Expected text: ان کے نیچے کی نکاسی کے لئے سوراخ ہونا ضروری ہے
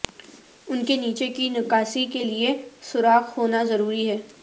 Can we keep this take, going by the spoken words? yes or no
yes